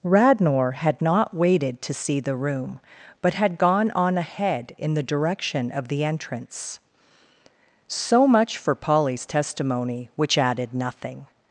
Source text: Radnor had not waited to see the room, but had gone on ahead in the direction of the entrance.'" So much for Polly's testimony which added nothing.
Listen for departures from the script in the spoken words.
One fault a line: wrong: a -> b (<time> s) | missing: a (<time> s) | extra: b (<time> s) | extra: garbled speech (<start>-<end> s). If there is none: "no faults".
no faults